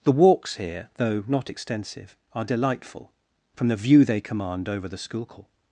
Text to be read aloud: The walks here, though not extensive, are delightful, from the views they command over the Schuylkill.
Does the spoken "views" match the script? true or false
false